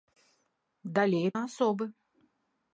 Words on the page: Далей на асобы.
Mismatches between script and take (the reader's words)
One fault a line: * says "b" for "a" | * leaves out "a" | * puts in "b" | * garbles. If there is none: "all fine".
all fine